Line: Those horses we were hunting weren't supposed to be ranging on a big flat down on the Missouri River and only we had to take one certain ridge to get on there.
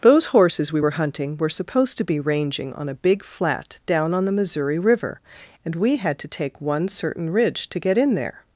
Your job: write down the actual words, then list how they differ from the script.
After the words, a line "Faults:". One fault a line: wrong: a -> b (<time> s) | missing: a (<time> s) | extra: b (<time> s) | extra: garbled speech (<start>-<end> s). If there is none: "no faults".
Those horses we were hunting were supposed to be ranging on a big flat down on the Missouri River and we had to take one certain ridge to get in there.
Faults:
wrong: weren't -> were (1.4 s)
missing: only (5.7 s)
wrong: on -> in (8.0 s)